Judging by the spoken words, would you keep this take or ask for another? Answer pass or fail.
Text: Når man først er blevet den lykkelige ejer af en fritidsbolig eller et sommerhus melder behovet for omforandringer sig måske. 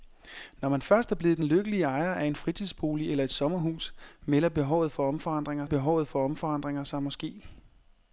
fail